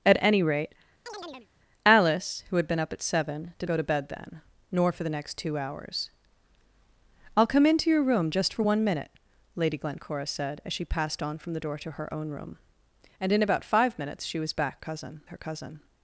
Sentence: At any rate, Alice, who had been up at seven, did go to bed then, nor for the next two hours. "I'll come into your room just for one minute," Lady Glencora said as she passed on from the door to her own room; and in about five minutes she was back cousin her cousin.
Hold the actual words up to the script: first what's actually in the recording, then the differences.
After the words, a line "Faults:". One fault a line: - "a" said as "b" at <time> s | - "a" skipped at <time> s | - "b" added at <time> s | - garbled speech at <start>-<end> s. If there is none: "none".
At any rate, Alice, who had been up at seven, did go to bed then, nor for the next two hours. "I'll come into your room just for one minute," Lady Glencora said as she passed on from the door to her own room; and in about five minutes she was back cousin her cousin.
Faults:
none